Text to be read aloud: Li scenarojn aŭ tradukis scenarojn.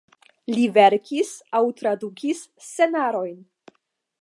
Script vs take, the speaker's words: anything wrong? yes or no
yes